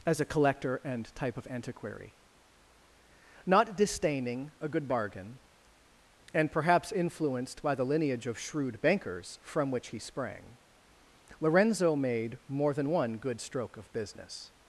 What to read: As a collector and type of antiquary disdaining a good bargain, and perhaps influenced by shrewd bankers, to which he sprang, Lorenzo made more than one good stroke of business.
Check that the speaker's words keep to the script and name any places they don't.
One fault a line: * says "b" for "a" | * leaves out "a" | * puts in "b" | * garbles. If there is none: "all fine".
* puts in "not"
* puts in "the lineage of"
* says "from" for "to"